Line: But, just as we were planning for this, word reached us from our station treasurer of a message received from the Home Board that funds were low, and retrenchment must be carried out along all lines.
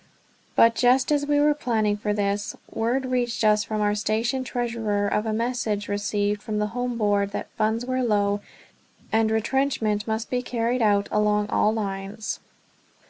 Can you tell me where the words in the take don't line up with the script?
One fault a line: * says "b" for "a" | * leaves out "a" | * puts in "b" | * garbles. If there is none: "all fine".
all fine